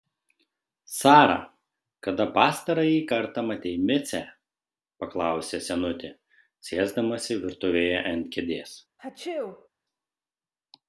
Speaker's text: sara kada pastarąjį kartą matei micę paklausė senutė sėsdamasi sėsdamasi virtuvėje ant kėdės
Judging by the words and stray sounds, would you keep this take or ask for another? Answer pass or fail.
fail